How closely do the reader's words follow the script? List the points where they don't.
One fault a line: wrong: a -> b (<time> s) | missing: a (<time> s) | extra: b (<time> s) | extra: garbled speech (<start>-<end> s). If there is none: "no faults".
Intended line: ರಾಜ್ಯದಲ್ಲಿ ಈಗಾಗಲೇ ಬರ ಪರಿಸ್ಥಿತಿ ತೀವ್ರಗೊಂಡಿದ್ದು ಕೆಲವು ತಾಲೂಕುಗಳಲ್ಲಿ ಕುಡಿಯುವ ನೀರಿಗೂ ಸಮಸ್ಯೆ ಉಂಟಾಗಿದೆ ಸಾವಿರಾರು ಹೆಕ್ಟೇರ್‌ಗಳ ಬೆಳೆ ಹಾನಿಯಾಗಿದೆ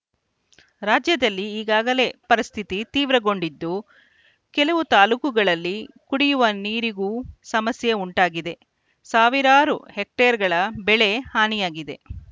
missing: ಬರ (2.0 s)